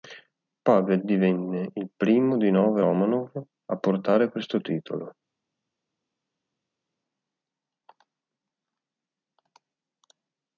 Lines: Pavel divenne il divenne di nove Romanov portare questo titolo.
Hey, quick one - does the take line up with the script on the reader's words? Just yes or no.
no